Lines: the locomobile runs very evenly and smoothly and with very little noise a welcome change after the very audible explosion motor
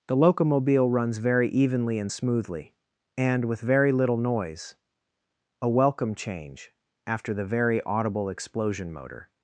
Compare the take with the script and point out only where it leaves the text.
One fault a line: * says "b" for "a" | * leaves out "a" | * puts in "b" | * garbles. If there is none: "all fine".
all fine